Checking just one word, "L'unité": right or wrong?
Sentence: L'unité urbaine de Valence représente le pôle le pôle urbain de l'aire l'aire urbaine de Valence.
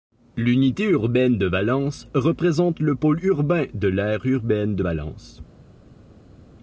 right